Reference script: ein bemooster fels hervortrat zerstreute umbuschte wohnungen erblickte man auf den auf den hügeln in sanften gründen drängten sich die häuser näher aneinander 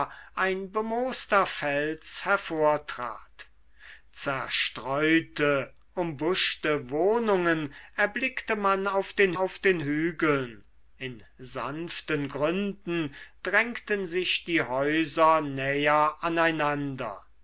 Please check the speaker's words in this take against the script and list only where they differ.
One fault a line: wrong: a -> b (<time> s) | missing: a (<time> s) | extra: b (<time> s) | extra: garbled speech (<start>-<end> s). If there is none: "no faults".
no faults